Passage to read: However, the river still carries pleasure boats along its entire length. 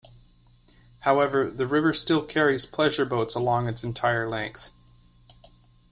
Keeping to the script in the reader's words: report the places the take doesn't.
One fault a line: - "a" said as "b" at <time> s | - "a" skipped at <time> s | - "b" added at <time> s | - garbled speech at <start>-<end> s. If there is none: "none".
none